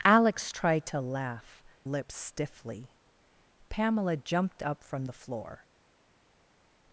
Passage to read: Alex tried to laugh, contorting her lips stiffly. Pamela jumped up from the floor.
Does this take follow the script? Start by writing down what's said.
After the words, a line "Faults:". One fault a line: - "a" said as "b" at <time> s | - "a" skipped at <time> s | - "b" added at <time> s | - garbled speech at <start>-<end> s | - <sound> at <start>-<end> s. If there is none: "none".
Alex tried to laugh, lips stiffly. Pamela jumped up from the floor.
Faults:
- "contorting her" skipped at 1.6 s